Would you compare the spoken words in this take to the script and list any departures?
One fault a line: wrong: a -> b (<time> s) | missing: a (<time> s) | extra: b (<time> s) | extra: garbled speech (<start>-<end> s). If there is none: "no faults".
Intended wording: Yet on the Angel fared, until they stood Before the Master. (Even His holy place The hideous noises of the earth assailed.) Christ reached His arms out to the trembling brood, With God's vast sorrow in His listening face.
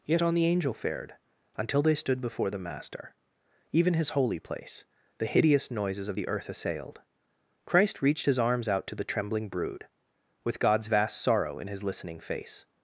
no faults